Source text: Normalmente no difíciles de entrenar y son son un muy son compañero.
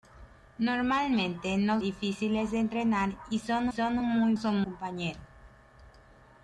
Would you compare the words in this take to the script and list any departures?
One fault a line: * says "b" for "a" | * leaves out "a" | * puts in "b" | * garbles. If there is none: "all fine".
all fine